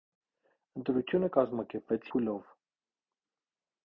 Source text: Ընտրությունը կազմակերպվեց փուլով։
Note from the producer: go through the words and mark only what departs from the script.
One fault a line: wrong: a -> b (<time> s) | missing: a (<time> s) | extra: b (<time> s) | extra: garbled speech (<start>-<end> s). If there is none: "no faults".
no faults